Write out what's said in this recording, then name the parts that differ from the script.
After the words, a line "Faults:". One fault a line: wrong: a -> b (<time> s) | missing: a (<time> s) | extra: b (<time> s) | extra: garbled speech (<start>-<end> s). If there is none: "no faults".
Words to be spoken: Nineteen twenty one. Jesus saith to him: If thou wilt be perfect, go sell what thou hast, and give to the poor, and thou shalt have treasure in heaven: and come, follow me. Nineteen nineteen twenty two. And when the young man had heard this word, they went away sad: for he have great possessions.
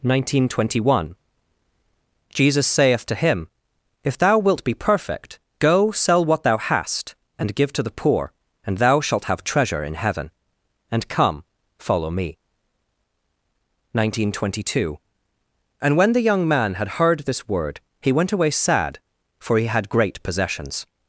Nineteen twenty one. Jesus saith to him: If thou wilt be perfect, go sell what thou hast, and give to the poor, and thou shalt have treasure in heaven: and come, follow me. Nineteen twenty two. And when the young man had heard this word, he went away sad: for he had great possessions.
Faults:
missing: nineteen (14.3 s)
wrong: they -> he (18.0 s)
wrong: have -> had (19.7 s)